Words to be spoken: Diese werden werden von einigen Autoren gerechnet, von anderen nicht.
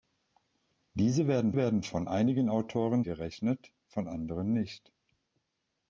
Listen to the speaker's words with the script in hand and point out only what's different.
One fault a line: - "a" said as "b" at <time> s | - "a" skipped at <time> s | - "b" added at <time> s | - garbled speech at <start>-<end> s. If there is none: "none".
none